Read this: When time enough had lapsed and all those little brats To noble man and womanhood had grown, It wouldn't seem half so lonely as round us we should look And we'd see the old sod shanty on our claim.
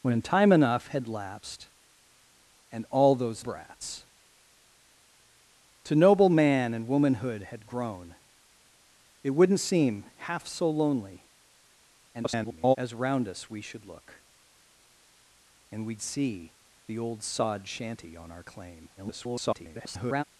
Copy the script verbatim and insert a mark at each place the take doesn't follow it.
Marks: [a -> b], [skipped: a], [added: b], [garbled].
When time enough had lapsed and all those [skipped: little] brats To noble man and womanhood had grown, It wouldn't seem half so lonely [garbled] as round us we should look And we'd see the old sod shanty on our claim. [garbled]